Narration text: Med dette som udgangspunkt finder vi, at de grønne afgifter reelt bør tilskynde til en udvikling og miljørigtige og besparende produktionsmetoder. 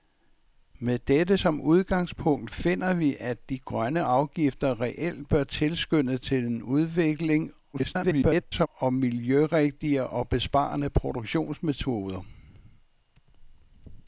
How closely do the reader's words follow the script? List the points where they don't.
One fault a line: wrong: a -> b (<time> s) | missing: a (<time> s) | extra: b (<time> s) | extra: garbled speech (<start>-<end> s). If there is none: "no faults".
extra: garbled speech (7.7-8.7 s)